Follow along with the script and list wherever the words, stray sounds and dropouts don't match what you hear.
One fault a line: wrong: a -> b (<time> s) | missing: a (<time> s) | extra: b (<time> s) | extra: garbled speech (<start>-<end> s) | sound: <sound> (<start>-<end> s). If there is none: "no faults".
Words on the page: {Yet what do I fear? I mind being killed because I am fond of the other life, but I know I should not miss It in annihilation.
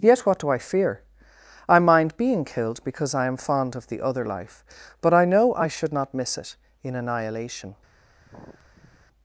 sound: sigh (8.2-9.1 s)